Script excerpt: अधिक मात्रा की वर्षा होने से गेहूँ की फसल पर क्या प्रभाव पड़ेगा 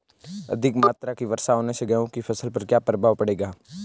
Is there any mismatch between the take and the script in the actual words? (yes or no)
no